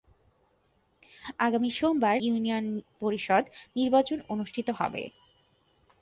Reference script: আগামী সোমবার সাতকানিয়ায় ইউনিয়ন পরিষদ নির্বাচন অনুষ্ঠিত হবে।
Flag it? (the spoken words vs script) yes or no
yes